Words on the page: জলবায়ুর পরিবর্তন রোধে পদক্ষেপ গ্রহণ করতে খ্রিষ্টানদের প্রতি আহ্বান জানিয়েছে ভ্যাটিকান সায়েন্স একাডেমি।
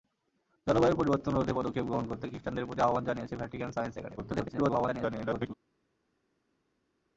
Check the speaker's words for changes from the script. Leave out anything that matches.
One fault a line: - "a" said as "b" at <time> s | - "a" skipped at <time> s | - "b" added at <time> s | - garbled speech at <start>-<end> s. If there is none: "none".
- garbled speech at 4.2-5.5 s